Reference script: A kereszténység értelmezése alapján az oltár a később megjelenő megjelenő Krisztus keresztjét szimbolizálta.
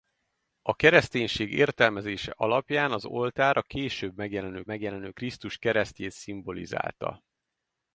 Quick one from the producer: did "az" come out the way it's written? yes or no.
yes